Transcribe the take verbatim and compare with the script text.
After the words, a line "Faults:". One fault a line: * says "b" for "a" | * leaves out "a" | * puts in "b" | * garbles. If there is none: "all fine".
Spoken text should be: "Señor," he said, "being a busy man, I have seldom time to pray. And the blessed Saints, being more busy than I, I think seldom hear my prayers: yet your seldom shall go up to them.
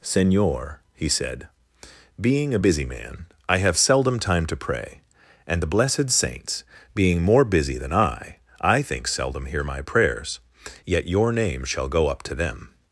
"Señor," he said, "being a busy man, I have seldom time to pray. And the blessed Saints, being more busy than I, I think seldom hear my prayers: yet your name shall go up to them.
Faults:
* says "name" for "seldom"